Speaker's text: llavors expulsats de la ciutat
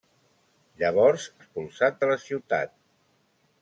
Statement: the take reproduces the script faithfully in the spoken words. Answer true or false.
true